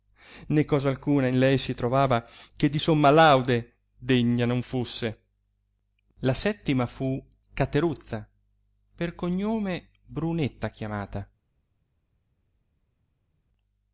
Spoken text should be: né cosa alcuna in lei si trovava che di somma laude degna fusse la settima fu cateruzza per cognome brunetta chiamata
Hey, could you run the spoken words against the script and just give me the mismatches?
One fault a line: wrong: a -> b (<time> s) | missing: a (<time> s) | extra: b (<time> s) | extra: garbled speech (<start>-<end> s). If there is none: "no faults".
extra: non (4.4 s)